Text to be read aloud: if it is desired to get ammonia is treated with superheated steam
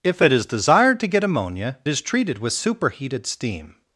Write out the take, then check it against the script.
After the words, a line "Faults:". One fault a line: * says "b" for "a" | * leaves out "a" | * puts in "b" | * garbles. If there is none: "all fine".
if it is desired to get ammonia is treated with superheated steam
Faults:
all fine